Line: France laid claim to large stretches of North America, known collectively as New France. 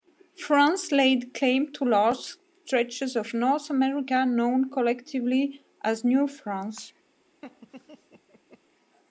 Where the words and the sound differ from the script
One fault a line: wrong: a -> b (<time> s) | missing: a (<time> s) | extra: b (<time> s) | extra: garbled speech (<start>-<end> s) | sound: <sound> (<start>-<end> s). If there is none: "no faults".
sound: laugh (7.4-8.6 s)